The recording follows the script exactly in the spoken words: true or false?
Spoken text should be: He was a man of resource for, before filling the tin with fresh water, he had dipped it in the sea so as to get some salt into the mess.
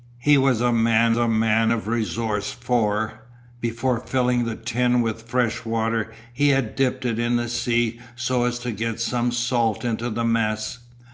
false